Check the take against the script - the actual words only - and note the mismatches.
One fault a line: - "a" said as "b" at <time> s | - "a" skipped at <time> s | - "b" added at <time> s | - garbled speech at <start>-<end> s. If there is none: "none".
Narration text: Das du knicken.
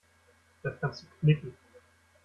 - "kannst" added at 0.8 s